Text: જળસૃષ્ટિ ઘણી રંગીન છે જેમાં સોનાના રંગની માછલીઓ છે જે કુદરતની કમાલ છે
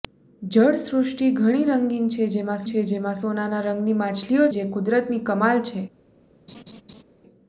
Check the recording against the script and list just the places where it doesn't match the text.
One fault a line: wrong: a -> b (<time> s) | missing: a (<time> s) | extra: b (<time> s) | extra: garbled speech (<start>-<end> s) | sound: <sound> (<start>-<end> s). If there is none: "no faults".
extra: છે જેમાં (2.6 s)
missing: છે (4.5 s)
sound: laugh (6.5-7.0 s)